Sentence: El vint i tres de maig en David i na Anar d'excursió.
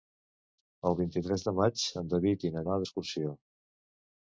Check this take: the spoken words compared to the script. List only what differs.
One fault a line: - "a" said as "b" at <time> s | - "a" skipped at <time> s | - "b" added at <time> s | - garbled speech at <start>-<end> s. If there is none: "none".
none